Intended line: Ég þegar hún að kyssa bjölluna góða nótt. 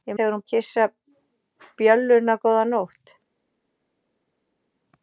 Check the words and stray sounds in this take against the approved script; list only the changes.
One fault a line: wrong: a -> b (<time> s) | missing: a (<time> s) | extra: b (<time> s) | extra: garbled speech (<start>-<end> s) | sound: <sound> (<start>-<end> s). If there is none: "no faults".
no faults